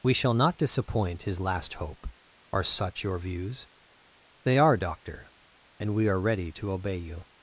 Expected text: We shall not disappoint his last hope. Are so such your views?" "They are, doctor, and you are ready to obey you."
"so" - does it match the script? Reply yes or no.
no